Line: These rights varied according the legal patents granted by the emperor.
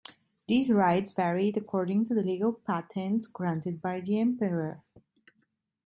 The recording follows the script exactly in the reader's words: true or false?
false